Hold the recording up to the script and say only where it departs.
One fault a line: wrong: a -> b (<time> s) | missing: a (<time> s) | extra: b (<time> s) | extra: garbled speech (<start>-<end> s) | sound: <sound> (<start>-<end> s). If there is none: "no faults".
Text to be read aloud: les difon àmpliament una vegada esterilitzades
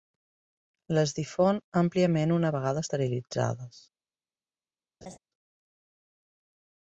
sound: laugh (5.0-5.2 s)